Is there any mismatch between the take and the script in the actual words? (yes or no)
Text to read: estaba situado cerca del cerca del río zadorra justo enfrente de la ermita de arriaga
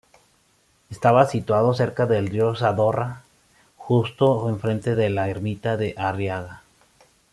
yes